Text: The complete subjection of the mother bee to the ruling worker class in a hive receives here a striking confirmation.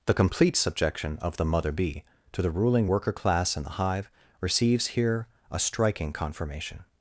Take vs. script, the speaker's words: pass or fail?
fail